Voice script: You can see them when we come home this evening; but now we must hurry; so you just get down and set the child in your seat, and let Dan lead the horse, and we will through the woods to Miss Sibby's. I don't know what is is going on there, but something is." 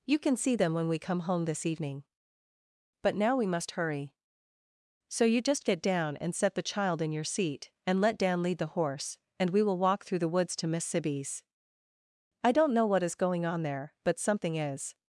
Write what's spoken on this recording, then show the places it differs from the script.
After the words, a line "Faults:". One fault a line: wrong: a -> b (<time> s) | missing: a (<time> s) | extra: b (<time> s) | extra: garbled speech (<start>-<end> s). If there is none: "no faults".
You can see them when we come home this evening; but now we must hurry; so you just get down and set the child in your seat, and let Dan lead the horse, and we will walk through the woods to Miss Sibby's. I don't know what is going on there, but something is."
Faults:
extra: walk (9.8 s)
missing: is (13.2 s)